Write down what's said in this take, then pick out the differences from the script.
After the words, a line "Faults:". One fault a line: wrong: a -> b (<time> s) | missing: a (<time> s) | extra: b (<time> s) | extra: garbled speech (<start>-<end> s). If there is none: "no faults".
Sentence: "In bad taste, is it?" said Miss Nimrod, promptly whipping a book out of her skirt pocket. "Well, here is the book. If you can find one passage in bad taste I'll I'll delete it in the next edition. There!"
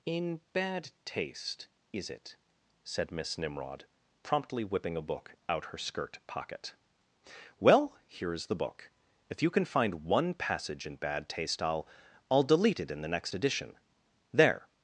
"In bad taste, is it?" said Miss Nimrod, promptly whipping a book out her skirt pocket. "Well, here is the book. If you can find one passage in bad taste I'll I'll delete it in the next edition. There!"
Faults:
missing: of (5.7 s)